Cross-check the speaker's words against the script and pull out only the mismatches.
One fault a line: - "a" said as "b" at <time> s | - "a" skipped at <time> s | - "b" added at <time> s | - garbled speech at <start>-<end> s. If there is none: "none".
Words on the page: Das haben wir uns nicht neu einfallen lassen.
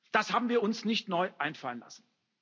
none